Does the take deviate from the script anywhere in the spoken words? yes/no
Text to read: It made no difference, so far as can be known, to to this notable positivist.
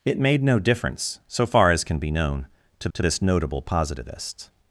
no